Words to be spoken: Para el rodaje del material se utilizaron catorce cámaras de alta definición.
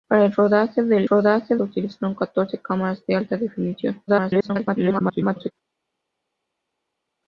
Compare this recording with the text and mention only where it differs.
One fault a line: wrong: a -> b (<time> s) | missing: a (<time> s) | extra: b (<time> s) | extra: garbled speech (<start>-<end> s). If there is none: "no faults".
wrong: material -> rodaje (1.0 s)
extra: garbled speech (4.1-5.5 s)